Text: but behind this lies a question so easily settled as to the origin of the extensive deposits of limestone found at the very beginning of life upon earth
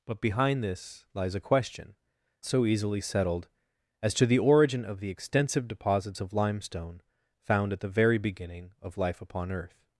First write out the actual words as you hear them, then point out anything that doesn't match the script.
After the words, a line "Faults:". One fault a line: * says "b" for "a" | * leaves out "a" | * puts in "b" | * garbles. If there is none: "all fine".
but behind this lies a question so easily settled as to the origin of the extensive deposits of limestone found at the very beginning of life upon earth
Faults:
all fine